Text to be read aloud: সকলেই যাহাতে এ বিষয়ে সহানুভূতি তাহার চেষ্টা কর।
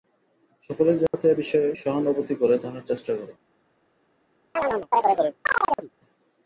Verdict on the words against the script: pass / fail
fail